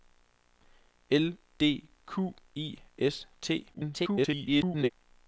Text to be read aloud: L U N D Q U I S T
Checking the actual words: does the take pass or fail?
fail